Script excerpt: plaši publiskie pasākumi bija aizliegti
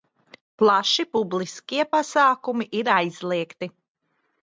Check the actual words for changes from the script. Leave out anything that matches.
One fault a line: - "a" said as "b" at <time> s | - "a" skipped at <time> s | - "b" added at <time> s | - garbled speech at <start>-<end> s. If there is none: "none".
- "bija" said as "ir" at 2.8 s